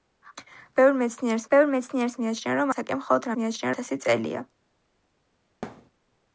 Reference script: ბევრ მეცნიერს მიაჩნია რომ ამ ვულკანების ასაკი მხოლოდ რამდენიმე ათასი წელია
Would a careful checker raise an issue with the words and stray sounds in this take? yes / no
yes